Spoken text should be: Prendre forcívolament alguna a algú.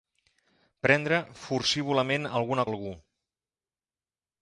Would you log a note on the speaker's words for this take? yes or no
no